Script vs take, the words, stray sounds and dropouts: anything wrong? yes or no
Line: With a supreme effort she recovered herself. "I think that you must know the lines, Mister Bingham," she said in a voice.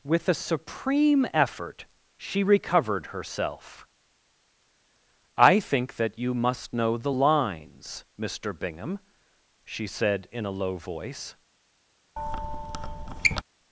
yes